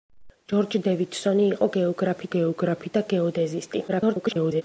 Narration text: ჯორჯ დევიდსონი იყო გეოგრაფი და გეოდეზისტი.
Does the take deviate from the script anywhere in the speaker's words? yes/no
yes